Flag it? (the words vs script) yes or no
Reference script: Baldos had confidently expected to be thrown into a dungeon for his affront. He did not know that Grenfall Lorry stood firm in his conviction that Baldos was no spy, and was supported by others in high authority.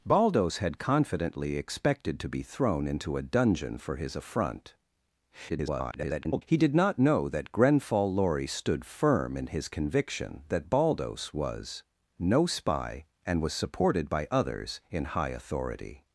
yes